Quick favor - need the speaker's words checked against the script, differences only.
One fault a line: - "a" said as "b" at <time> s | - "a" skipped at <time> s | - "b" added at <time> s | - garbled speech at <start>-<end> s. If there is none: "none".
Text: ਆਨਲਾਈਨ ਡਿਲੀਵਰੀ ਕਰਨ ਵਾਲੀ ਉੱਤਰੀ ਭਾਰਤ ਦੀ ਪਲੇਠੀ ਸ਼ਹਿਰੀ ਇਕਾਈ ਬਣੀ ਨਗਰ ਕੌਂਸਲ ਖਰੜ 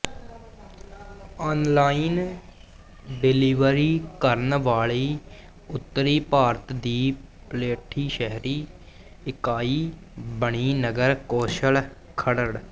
none